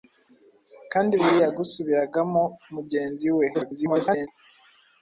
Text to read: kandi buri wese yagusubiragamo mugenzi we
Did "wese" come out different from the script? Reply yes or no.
yes